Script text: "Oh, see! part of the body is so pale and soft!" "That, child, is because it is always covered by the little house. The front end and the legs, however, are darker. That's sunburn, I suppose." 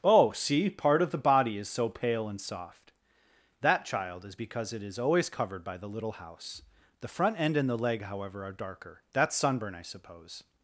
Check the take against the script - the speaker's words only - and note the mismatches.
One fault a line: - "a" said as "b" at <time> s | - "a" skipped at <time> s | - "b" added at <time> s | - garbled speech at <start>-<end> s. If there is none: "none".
- "legs" said as "leg" at 7.8 s